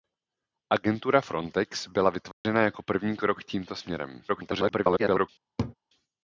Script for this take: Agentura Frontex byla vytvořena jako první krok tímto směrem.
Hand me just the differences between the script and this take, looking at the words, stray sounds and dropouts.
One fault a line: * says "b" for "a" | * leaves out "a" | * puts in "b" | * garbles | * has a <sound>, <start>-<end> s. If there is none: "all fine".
* has a dropout, 2.3-2.4 s
* garbles
* has a laugh, 5.6-5.8 s